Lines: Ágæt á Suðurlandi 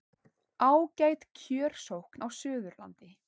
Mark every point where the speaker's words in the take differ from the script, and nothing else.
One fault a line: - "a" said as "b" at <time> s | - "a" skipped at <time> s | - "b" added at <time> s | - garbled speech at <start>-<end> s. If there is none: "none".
- "kjörsókn" added at 1.4 s